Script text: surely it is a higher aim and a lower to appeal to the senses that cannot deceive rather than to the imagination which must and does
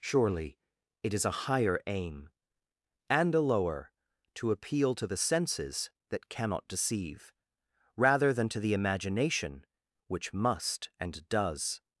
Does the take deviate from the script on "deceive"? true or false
false